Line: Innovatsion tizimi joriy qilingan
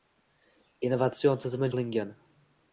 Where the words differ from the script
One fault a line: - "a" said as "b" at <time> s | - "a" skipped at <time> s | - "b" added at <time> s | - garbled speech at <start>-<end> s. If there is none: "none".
- "joriy" skipped at 1.7 s